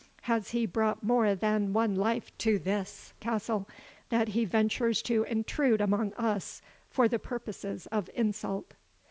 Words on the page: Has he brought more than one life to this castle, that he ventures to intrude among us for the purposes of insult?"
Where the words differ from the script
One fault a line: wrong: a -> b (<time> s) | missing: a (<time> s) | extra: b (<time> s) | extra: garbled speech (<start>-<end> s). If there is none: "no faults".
no faults